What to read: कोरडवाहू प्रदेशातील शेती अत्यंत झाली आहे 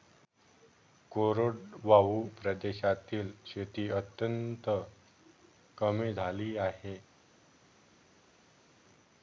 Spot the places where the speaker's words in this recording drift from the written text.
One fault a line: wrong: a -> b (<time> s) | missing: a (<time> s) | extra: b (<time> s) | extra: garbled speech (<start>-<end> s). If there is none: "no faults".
extra: कमी (5.8 s)